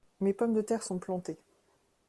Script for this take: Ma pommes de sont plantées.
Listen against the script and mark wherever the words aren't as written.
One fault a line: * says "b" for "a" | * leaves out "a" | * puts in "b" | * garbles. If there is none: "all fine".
* says "Mes" for "Ma"
* puts in "terre"